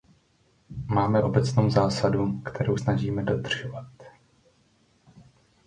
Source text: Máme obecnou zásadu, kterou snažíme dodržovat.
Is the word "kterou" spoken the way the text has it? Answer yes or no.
yes